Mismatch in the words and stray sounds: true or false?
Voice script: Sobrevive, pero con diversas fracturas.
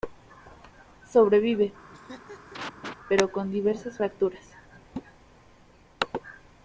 true